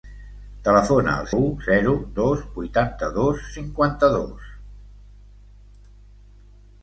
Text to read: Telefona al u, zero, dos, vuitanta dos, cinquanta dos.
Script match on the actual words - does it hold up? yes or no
yes